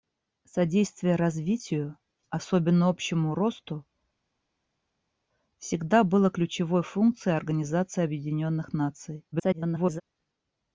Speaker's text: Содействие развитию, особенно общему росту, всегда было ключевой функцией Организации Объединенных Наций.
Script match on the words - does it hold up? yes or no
no